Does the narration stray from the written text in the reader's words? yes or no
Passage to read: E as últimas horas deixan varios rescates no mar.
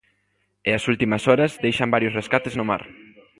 no